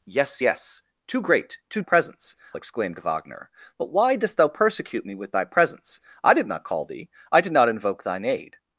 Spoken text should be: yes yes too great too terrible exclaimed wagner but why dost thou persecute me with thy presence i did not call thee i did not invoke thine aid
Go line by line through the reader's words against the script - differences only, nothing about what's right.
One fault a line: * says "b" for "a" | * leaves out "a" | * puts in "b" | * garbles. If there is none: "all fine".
* says "presence" for "terrible"